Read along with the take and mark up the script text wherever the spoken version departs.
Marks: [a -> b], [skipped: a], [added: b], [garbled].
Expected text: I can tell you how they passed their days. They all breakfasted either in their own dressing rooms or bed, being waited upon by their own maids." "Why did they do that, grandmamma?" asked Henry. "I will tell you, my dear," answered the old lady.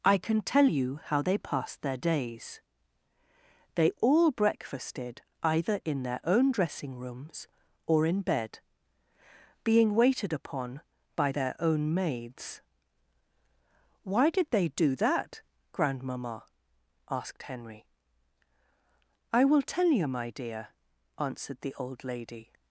I can tell you how they passed their days. They all breakfasted either in their own dressing rooms or [added: in] bed, being waited upon by their own maids." "Why did they do that, grandmamma?" asked Henry. "I will tell you, my dear," answered the old lady.